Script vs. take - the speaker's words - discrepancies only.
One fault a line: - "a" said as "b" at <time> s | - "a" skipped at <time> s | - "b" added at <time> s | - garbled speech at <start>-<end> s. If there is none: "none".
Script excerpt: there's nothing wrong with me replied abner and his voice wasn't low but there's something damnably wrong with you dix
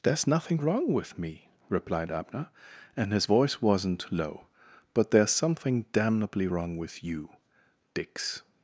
none